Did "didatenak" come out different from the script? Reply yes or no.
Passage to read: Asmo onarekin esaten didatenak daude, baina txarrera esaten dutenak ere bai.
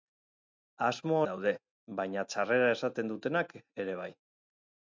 yes